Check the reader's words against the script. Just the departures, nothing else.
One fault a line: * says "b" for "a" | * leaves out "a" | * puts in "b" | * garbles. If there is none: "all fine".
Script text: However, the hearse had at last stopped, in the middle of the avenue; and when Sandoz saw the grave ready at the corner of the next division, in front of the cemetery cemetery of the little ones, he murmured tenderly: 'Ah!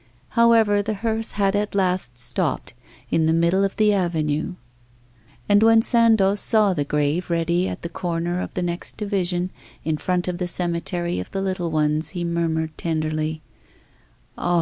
* leaves out "cemetery"